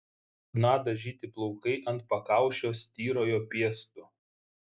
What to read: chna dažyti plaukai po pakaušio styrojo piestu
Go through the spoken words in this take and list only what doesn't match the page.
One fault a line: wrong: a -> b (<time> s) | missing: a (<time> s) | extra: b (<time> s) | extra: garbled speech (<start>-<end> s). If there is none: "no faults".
wrong: po -> ant (1.9 s)